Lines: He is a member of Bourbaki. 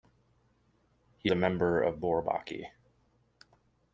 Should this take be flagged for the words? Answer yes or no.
yes